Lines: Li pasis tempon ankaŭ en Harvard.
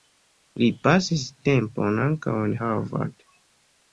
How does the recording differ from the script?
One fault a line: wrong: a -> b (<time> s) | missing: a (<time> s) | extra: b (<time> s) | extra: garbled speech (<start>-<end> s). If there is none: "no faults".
no faults